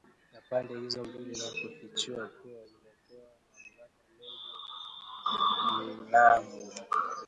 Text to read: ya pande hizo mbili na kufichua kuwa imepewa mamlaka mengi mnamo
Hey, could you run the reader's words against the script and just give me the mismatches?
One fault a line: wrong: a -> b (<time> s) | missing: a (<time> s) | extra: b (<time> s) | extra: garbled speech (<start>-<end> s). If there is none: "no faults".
no faults